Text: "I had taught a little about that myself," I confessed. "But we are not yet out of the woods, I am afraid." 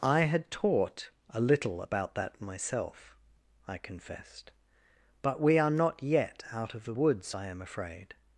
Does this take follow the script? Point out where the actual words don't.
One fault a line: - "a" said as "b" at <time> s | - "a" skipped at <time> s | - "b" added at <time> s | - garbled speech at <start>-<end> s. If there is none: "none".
none